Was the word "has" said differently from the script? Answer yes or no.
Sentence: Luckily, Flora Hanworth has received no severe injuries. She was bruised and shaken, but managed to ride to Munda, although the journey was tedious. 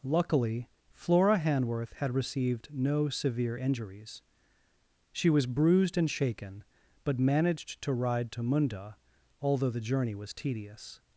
yes